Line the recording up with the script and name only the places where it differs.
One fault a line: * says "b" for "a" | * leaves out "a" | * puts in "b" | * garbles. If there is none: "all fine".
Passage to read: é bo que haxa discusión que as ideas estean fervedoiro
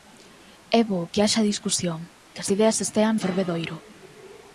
all fine